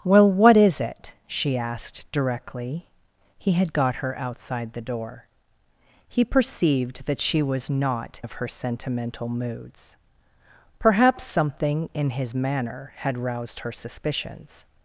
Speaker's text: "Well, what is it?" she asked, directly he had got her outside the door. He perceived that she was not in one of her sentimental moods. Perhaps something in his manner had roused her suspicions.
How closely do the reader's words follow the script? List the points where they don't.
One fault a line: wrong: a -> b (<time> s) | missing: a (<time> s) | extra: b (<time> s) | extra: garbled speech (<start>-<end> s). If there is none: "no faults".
missing: in one (8.2 s)